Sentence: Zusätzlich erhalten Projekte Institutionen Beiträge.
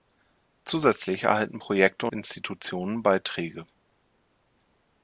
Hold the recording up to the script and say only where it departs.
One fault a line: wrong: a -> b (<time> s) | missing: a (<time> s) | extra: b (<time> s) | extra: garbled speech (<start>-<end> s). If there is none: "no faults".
no faults